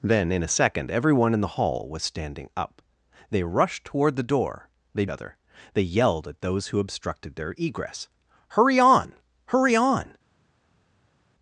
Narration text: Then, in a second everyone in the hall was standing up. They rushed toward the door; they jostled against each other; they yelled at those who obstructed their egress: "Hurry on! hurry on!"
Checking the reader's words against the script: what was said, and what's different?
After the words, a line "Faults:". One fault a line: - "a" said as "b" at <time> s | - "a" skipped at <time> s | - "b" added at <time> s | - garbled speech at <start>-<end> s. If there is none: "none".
Then, in a second everyone in the hall was standing up. They rushed toward the door; they other; they yelled at those who obstructed their egress: "Hurry on! hurry on!"
Faults:
- "jostled against each" skipped at 5.0 s